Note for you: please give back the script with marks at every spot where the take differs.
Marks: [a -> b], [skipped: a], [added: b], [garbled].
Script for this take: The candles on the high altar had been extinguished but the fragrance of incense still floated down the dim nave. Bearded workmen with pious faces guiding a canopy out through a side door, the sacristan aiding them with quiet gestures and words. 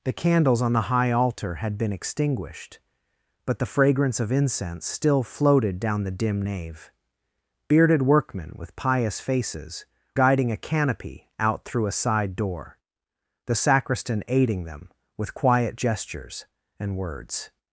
The candles on the high altar had been extinguished but the fragrance of incense still floated down the dim nave. Bearded workmen with pious faces guiding a canopy out through a side door, the sacristan aiding them with quiet gestures and words.